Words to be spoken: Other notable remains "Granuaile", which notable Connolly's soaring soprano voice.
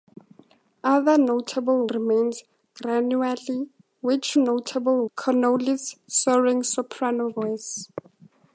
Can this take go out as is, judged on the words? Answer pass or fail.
pass